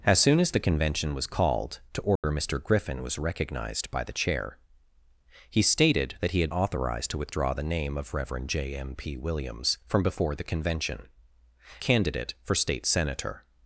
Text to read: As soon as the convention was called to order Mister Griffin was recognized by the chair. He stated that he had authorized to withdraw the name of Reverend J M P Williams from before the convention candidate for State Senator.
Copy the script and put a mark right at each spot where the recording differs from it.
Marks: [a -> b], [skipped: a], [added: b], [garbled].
As soon as the convention was called to order Mister Griffin was recognized by the chair. He stated that he had authorized to withdraw the name of Reverend J M P Williams from before the convention candidate for State Senator.